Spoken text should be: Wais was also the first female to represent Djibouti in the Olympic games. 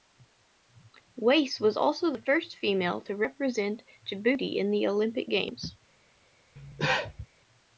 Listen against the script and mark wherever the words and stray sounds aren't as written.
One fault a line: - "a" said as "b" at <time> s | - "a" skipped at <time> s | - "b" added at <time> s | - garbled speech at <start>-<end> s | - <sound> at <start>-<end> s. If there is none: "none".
- cough at 6.6-7.3 s